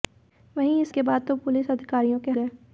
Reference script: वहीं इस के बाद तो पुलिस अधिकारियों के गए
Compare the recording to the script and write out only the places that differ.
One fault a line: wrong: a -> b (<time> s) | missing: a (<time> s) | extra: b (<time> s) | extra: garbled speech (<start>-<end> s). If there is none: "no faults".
no faults